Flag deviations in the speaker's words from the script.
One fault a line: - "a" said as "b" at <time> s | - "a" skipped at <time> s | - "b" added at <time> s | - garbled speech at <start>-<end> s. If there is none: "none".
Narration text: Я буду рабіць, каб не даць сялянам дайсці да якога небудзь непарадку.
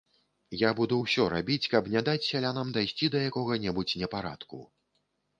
- "ўсё" added at 1.0 s